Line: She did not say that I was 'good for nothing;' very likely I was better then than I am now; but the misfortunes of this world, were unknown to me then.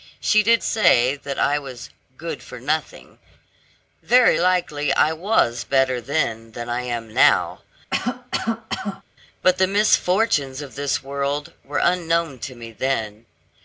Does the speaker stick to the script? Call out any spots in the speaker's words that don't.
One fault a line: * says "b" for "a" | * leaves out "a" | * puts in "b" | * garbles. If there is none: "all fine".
* leaves out "not"